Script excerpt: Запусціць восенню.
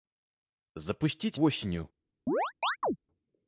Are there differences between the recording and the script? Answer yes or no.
no